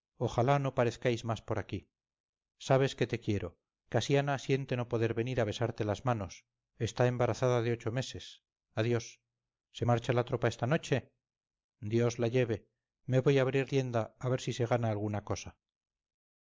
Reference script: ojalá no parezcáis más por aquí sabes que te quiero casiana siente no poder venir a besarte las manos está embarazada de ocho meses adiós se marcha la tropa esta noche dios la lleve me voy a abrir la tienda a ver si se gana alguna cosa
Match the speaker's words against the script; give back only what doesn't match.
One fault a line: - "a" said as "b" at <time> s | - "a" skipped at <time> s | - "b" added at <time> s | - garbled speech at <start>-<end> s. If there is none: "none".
- "la" skipped at 13.7 s